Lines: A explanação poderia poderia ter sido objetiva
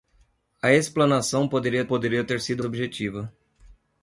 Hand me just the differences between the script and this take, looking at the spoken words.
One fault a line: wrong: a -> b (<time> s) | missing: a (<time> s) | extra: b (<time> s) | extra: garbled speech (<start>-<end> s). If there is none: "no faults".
no faults